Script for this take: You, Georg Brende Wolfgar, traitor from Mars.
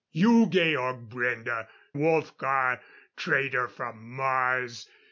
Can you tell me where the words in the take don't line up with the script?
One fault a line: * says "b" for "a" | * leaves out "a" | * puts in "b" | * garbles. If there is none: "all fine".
all fine